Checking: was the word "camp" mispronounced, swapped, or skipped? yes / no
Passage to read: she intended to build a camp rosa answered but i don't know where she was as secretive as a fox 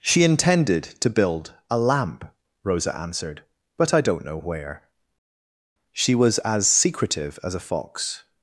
yes